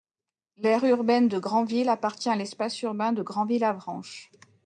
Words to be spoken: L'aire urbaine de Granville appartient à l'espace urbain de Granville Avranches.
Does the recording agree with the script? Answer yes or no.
yes